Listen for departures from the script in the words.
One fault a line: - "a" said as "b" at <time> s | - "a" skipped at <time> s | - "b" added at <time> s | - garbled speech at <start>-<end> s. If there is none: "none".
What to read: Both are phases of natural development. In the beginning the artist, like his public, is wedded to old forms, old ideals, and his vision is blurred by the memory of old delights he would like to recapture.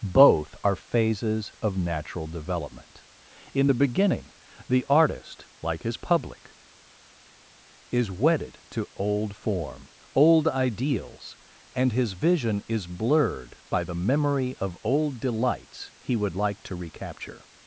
- "forms" said as "form" at 9.3 s